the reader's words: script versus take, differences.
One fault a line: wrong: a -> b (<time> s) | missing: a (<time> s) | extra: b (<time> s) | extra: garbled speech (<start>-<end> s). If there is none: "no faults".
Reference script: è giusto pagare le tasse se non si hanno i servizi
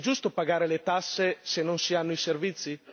no faults